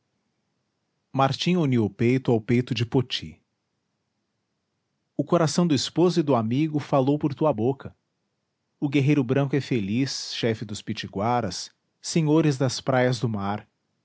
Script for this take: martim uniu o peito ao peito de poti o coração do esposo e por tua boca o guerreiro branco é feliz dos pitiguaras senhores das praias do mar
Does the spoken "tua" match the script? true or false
true